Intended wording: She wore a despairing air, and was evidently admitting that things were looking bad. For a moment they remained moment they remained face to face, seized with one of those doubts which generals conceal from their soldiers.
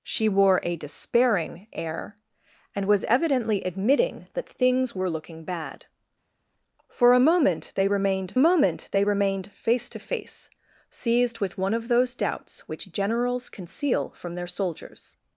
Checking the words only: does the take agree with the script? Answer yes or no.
yes